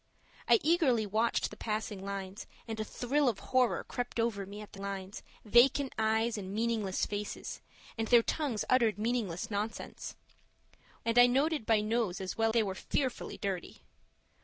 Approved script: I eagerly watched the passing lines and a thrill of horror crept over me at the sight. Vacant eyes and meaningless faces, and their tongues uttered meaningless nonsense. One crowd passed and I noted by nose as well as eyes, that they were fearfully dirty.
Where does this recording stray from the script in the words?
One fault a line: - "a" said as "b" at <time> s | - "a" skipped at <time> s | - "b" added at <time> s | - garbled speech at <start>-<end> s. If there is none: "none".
- "sight" said as "lines" at 4.8 s
- "One crowd passed" skipped at 10.2 s
- "as eyes that" skipped at 12.5 s